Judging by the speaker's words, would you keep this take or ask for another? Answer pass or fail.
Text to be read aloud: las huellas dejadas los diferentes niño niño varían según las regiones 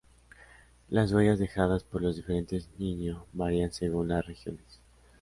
fail